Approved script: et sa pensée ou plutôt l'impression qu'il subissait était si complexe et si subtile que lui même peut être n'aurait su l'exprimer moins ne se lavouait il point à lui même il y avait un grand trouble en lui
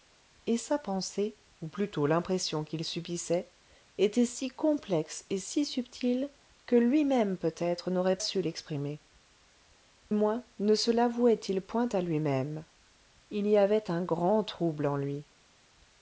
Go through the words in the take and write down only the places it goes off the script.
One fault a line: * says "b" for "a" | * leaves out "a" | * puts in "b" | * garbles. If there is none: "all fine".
all fine